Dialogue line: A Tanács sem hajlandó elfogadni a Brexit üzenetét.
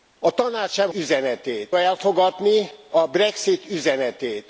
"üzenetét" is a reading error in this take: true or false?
false